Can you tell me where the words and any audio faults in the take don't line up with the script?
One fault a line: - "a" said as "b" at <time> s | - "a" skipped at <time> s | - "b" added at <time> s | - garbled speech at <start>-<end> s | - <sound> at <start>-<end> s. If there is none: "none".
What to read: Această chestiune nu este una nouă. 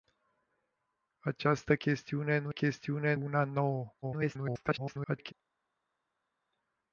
- "este" said as "chestiune" at 2.5 s
- garbled speech at 4.0-5.3 s